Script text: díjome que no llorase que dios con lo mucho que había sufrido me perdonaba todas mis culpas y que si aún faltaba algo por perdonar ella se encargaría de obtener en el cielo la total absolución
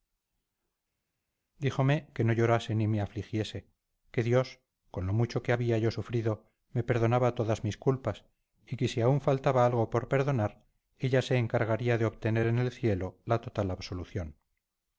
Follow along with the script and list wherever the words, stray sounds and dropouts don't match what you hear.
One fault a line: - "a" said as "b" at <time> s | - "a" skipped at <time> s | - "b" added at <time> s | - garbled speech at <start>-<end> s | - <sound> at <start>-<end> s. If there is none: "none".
- "ni me afligiese" added at 2.7 s
- "yo" added at 5.8 s